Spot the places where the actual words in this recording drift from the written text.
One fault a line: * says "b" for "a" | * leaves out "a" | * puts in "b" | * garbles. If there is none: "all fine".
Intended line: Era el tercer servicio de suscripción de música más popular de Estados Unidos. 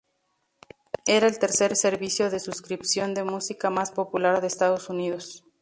all fine